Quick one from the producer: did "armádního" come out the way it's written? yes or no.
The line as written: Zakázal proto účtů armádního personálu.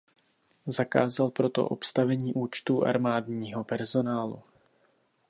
yes